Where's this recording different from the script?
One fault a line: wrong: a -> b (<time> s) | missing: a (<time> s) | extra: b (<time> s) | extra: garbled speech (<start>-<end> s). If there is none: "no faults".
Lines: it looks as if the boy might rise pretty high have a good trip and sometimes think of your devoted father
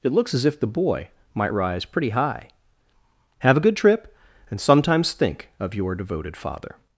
no faults